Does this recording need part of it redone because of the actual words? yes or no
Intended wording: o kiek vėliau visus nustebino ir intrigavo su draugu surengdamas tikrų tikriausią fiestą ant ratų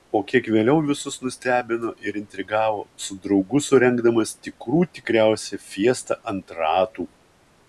no